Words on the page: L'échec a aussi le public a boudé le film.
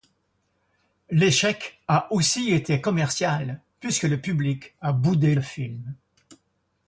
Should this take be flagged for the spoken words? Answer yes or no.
yes